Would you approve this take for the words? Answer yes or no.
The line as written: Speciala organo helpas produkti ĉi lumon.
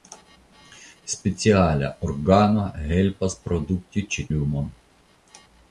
yes